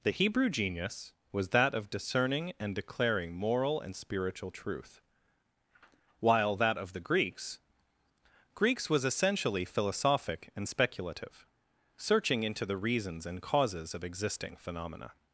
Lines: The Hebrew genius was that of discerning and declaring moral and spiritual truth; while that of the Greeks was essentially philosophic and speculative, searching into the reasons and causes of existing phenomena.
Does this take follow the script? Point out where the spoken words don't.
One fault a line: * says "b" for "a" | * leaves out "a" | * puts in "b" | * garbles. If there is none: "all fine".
* puts in "Greeks"